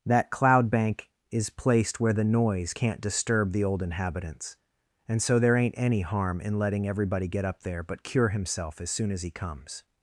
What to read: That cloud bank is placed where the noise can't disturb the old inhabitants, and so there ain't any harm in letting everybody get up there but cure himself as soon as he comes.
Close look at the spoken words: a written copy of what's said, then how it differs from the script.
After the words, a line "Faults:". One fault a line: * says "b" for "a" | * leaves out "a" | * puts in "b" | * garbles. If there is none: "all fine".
That cloud bank is placed where the noise can't disturb the old inhabitants, and so there ain't any harm in letting everybody get up there but cure himself as soon as he comes.
Faults:
all fine